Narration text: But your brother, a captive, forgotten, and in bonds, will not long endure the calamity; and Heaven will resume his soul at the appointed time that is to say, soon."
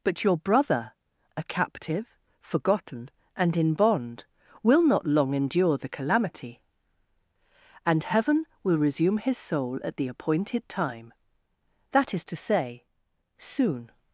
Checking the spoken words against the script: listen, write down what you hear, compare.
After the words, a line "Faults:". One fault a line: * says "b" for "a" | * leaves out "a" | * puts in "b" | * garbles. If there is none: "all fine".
But your brother, a captive, forgotten, and in bond, will not long endure the calamity; and Heaven will resume his soul at the appointed time that is to say, soon."
Faults:
* says "bond" for "bonds"